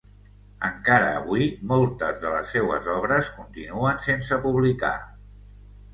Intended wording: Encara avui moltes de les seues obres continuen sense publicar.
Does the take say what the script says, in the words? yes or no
yes